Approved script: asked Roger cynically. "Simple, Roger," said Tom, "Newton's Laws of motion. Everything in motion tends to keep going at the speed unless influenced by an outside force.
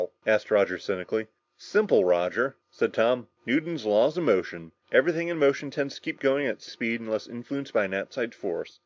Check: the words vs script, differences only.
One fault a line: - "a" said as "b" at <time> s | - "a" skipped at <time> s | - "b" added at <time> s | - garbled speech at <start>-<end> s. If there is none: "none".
none